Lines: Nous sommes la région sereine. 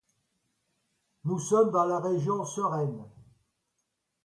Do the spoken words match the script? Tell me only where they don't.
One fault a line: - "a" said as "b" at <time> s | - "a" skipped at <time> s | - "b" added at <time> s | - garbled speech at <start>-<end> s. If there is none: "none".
- "dans" added at 1.7 s